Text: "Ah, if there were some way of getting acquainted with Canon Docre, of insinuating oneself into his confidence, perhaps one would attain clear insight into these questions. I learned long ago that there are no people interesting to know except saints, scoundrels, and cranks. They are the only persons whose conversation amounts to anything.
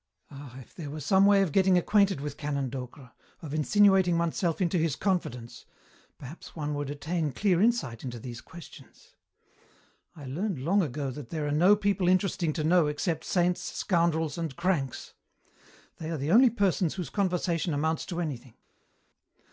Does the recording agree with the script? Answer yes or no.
yes